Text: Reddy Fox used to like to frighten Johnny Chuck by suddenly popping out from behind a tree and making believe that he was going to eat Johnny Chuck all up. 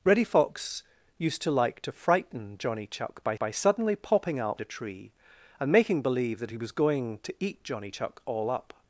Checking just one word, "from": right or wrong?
wrong